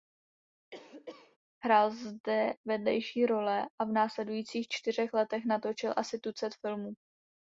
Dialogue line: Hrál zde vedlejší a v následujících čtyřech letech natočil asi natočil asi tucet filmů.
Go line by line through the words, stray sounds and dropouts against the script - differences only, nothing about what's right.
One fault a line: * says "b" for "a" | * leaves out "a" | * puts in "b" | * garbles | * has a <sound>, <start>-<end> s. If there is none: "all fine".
* has a cough, 0.7-1.4 s
* puts in "role"
* leaves out "natočil asi"